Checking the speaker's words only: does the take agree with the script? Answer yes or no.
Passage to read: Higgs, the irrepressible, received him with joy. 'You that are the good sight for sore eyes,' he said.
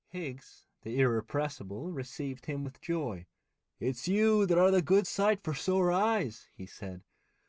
no